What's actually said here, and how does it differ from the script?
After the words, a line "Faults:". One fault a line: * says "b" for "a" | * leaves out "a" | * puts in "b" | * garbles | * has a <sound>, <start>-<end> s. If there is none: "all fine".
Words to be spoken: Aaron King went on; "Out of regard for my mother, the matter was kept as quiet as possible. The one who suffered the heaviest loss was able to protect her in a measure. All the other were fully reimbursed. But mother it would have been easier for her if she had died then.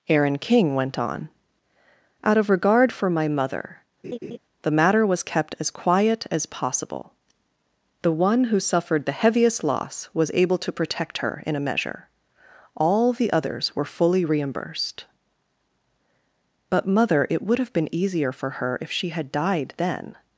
Aaron King went on; "Out of regard for my mother, the matter was kept as quiet as possible. The one who suffered the heaviest loss was able to protect her in a measure. All the others were fully reimbursed. But mother it would have been easier for her if she had died then.
Faults:
* has a laugh, 4.0-4.4 s
* says "others" for "other"